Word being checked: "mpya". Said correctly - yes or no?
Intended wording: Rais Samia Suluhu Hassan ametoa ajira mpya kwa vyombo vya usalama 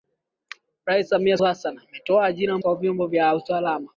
no